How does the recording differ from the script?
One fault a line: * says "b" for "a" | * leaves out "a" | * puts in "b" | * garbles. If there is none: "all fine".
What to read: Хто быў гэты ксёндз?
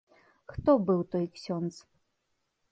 * says "той" for "гэты"